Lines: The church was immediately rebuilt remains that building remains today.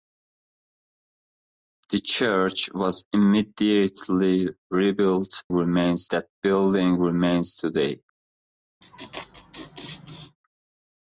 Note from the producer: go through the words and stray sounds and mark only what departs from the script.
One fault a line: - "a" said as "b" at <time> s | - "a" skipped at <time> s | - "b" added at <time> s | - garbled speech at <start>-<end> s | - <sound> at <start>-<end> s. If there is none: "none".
- laugh at 8.8-10.4 s